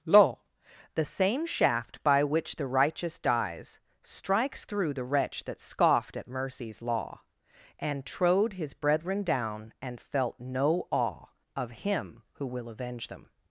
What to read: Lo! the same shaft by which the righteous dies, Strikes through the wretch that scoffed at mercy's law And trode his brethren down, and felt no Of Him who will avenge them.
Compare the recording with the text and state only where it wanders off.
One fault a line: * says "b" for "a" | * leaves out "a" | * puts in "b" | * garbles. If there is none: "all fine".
* puts in "awe"